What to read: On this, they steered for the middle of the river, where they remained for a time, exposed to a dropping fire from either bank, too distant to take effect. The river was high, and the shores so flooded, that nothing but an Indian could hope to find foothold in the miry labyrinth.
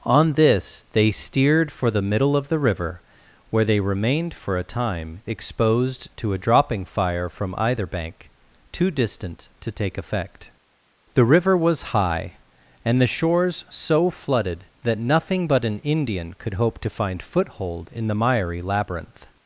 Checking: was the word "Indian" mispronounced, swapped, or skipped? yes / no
no